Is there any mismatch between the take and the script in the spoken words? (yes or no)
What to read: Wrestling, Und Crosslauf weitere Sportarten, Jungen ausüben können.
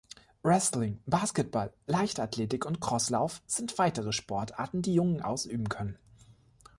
yes